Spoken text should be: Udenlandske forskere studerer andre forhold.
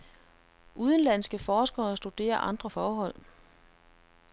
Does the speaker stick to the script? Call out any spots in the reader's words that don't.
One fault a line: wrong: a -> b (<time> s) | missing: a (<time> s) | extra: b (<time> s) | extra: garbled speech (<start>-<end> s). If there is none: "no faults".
no faults